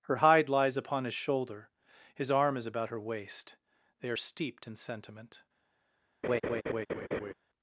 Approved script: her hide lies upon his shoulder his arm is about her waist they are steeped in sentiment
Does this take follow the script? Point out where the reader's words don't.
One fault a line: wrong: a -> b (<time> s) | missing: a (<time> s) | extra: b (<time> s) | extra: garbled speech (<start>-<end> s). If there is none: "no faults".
no faults